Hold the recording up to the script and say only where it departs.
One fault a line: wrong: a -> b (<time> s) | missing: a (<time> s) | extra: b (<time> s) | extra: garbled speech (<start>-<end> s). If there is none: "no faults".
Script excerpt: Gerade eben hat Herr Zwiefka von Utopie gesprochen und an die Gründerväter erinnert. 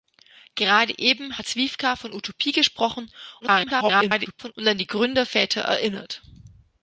missing: Herr (1.5 s)
extra: garbled speech (3.4-4.5 s)